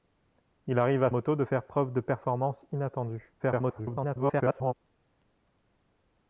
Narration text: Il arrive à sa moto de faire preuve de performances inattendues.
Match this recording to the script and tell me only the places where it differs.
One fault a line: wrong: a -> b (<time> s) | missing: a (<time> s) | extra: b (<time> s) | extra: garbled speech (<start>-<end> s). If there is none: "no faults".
missing: sa (1.1 s)
extra: garbled speech (3.4-4.7 s)